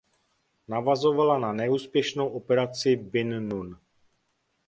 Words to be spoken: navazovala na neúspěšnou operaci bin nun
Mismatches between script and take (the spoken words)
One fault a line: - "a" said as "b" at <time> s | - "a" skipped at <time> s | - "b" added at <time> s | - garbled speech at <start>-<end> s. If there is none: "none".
none